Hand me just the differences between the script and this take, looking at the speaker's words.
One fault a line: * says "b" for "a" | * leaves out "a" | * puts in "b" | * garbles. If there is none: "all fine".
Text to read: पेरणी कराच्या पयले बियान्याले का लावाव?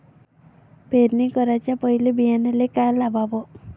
all fine